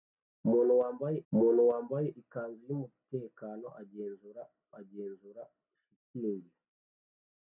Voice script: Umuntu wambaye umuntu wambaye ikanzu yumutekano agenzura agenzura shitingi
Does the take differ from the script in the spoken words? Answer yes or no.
no